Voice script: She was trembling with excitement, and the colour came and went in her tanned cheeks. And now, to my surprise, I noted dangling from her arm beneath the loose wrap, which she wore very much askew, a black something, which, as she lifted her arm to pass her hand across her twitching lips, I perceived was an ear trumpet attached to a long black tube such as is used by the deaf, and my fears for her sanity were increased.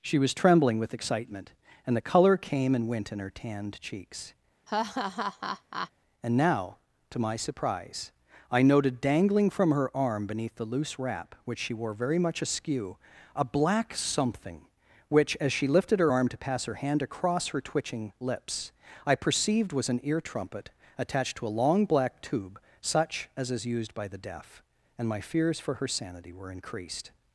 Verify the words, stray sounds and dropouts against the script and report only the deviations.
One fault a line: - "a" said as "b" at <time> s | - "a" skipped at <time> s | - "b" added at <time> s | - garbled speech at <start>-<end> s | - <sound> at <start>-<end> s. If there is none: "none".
- laugh at 4.7-5.9 s